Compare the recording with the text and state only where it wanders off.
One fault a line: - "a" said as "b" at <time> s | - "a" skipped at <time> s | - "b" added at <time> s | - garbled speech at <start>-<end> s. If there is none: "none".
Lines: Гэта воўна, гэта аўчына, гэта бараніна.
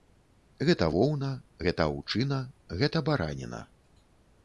none